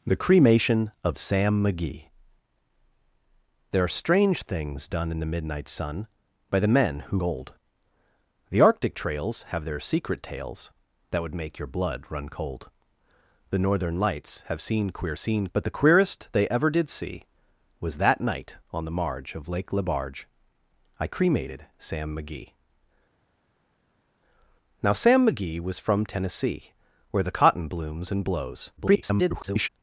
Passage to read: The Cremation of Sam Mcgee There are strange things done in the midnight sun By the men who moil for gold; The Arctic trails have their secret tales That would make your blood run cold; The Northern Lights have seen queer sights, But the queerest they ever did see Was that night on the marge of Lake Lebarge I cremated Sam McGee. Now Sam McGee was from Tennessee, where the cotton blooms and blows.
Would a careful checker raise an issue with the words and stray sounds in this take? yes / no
yes